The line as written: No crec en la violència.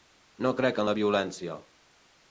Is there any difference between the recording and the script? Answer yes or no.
no